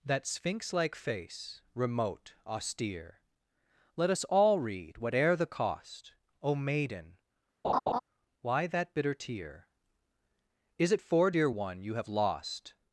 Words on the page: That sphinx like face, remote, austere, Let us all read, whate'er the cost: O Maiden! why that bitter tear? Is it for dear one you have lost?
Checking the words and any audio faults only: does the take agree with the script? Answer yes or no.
no